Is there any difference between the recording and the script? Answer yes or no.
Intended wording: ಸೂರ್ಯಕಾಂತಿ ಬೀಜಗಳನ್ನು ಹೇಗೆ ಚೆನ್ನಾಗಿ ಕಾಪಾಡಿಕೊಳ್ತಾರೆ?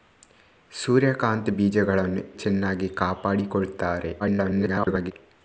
yes